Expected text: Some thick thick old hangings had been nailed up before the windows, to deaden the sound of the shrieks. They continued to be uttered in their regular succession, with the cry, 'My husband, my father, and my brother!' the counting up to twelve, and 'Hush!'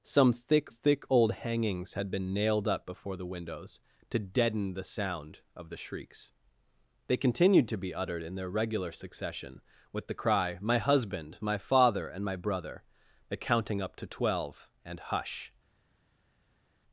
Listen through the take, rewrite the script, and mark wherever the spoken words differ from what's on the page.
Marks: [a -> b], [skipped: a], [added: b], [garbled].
Some thick thick old hangings had been nailed up before the windows, to deaden the sound of the shrieks. They continued to be uttered in their regular succession, with the cry, 'My husband, my father, and my brother!' the counting up to twelve, and 'Hush!'